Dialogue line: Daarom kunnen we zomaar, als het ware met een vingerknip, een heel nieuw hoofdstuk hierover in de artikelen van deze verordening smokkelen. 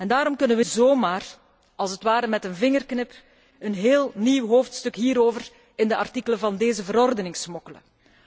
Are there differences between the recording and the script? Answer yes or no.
no